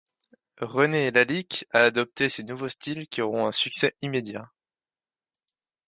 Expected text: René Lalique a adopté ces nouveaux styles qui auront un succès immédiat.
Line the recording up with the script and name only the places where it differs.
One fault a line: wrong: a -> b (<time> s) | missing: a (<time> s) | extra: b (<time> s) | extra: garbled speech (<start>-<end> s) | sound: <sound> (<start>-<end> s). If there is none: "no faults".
no faults